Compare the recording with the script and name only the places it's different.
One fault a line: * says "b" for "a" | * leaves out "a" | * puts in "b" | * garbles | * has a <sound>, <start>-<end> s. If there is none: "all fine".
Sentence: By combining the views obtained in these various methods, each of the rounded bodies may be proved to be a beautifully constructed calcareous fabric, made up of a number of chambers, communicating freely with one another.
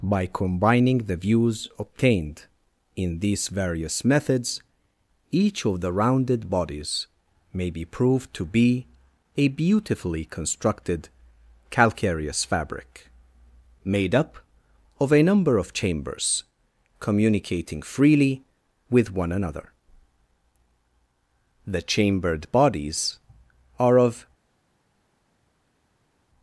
* puts in "The chambered bodies are of"